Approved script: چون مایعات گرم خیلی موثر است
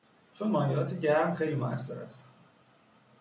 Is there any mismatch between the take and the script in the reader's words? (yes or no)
no